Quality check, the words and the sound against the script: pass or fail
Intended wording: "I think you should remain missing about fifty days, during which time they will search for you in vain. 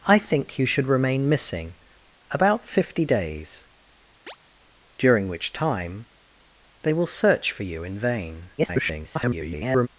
fail